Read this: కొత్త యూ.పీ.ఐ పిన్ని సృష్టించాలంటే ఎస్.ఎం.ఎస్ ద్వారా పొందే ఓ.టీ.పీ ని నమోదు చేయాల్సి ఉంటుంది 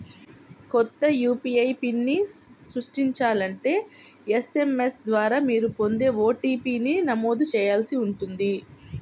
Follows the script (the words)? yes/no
no